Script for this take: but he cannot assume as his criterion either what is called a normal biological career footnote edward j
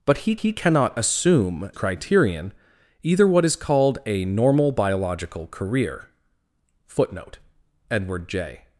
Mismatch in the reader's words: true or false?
true